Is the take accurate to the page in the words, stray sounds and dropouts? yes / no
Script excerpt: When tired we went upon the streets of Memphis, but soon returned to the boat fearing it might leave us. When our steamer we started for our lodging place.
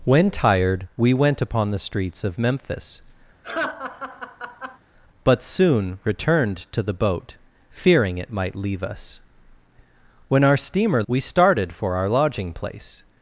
no